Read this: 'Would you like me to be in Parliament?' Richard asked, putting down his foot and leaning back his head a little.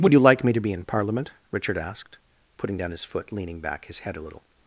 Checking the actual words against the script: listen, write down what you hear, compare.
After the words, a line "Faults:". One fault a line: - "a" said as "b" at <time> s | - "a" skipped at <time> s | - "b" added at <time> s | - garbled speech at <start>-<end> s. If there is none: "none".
'Would you like me to be in Parliament?' Richard asked, putting down his foot leaning back his head a little.
Faults:
- "and" skipped at 3.3 s